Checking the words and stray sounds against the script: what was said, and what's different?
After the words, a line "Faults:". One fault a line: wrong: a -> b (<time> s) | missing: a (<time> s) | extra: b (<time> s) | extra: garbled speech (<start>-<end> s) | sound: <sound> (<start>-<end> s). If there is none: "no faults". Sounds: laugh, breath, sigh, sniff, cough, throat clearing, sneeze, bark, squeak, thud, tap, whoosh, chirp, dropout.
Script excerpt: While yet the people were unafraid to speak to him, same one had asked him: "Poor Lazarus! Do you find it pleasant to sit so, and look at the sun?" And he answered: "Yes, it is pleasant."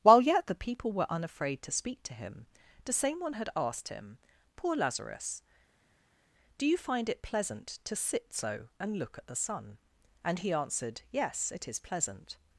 While yet the people were unafraid to speak to him, the same one had asked him: "Poor Lazarus! Do you find it pleasant to sit so, and look at the sun?" And he answered: "Yes, it is pleasant."
Faults:
extra: the (2.9 s)